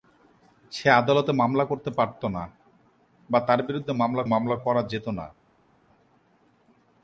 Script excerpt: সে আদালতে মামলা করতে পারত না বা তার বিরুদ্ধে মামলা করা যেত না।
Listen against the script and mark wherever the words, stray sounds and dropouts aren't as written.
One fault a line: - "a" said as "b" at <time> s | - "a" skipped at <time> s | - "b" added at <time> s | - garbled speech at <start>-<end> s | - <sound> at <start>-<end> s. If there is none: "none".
- "মামলা" added at 4.2 s